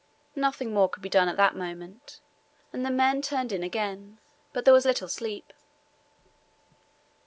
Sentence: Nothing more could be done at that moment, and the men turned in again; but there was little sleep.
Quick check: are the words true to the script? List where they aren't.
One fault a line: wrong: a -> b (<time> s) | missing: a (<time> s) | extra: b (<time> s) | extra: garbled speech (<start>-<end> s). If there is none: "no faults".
no faults